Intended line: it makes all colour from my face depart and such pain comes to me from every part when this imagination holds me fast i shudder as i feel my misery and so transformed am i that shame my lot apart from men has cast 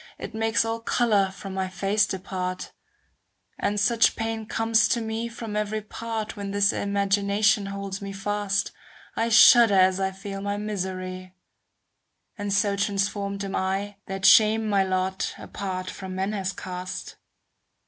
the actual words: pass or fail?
pass